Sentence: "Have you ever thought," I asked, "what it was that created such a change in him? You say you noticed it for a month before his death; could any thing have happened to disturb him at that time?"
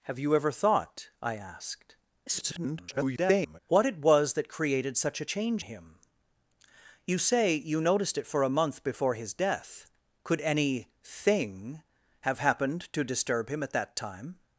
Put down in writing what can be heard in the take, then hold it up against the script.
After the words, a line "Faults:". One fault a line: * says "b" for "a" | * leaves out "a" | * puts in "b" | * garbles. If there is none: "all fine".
"Have you ever thought," I asked, [garbled] "what it was that created such a change him? You say you noticed it for a month before his death; could any thing have happened to disturb him at that time?"
Faults:
* garbles
* leaves out "in"